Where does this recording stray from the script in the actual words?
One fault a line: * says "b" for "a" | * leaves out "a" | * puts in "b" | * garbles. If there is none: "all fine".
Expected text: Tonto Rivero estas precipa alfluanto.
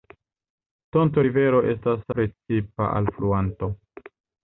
all fine